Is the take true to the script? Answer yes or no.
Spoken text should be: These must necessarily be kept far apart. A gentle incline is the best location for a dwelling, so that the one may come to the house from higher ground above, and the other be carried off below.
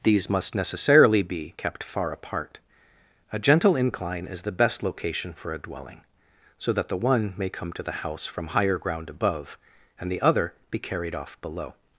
yes